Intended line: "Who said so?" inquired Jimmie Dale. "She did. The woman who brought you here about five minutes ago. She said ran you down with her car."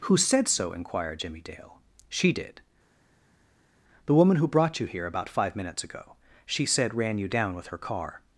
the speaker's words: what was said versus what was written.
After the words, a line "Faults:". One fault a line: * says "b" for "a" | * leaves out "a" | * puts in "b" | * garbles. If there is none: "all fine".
"Who said so?" inquired Jimmie Dale. "She did. The woman who brought you here about five minutes ago. She said ran you down with her car."
Faults:
all fine